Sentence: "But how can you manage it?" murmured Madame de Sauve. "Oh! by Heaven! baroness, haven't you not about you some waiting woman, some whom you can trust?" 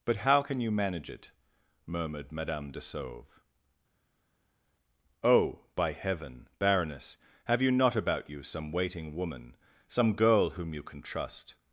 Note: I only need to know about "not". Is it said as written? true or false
true